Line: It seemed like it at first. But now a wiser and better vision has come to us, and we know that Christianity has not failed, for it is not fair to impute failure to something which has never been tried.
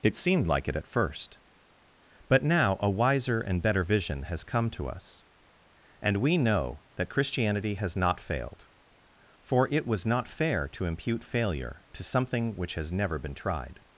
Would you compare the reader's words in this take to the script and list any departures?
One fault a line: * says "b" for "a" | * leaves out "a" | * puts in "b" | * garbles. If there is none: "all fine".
* says "was" for "is"